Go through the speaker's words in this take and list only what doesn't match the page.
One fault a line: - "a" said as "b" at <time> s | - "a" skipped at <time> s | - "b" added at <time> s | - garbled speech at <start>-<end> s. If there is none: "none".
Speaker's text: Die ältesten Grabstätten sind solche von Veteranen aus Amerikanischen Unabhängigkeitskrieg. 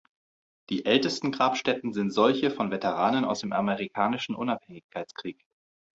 - "dem" added at 3.4 s